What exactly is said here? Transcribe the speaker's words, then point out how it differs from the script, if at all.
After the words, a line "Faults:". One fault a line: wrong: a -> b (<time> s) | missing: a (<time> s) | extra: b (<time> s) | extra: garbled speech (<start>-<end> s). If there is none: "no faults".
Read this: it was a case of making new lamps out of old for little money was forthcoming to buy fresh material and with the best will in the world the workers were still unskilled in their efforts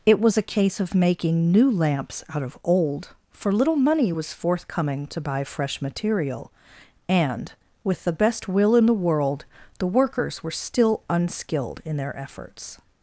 it was a case of making new lamps out of old for little money was forthcoming to buy fresh material and with the best will in the world the workers were still unskilled in their efforts
Faults:
no faults